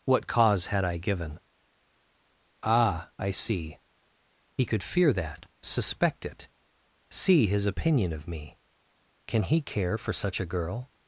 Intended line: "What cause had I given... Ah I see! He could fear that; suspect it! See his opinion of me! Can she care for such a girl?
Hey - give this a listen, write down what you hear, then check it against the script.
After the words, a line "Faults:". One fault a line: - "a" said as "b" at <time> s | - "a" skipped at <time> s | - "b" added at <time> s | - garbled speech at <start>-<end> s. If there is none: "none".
"What cause had I given... Ah I see! He could fear that; suspect it! See his opinion of me! Can he care for such a girl?
Faults:
- "she" said as "he" at 9.4 s